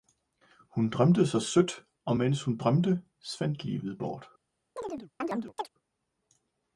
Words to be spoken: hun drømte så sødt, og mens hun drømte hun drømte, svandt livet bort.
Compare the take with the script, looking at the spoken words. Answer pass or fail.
fail